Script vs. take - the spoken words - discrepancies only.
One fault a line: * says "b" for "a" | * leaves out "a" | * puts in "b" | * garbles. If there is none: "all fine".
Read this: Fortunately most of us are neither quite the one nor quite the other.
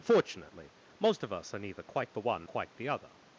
* leaves out "nor"